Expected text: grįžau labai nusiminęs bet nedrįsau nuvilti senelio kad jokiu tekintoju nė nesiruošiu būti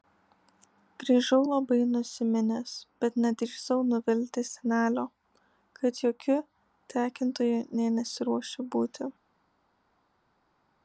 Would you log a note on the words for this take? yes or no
no